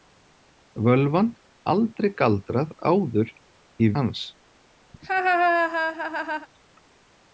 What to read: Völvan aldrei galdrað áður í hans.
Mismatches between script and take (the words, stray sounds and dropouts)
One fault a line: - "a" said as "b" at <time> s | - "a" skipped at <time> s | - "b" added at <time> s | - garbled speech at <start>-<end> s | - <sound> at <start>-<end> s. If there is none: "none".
- laugh at 4.9-6.5 s